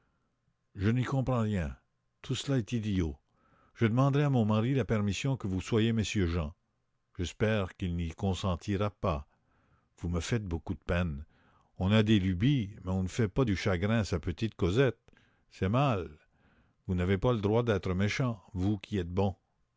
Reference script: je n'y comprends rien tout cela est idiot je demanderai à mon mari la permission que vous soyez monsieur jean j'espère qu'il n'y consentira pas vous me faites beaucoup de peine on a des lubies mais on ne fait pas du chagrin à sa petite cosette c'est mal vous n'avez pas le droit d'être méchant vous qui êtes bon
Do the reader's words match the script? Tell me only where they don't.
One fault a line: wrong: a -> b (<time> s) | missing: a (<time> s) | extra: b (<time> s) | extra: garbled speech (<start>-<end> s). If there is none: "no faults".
no faults